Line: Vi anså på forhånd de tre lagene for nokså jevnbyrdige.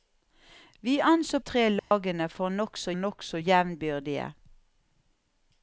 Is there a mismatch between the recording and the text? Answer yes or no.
yes